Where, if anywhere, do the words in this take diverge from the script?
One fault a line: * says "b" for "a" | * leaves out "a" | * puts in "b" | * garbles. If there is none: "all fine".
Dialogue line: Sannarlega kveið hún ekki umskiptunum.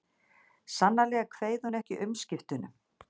all fine